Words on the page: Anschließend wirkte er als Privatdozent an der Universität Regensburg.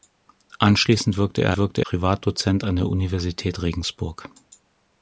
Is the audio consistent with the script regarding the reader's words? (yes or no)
no